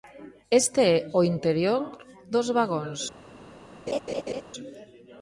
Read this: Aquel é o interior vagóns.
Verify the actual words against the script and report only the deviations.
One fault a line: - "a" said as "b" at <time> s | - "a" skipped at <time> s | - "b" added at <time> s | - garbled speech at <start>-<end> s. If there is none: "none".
- "Aquel" said as "Este" at 0.6 s
- "dos" added at 2.3 s